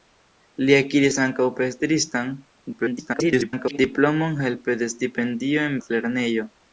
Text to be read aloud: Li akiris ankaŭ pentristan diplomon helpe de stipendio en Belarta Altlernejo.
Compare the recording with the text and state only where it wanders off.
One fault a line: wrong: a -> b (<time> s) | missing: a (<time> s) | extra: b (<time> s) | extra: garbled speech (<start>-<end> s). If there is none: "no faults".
extra: garbled speech (2.7-3.8 s)
missing: Belarta (5.8 s)